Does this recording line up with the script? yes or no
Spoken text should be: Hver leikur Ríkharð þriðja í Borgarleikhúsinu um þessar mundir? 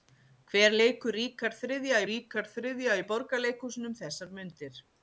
no